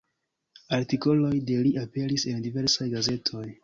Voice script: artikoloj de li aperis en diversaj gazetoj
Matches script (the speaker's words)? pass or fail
pass